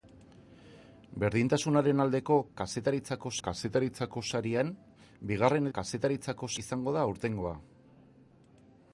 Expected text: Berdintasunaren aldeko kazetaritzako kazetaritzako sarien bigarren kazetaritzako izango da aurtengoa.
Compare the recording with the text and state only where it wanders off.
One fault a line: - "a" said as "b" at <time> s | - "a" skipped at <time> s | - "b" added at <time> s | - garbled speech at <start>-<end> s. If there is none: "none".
none